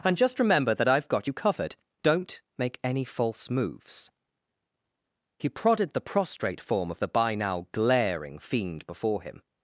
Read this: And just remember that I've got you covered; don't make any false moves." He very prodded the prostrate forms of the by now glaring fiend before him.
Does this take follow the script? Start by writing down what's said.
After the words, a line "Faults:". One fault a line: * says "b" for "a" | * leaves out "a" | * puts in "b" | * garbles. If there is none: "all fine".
And just remember that I've got you covered; don't make any false moves." He prodded the prostrate form of the by now glaring fiend before him.
Faults:
* leaves out "very"
* says "form" for "forms"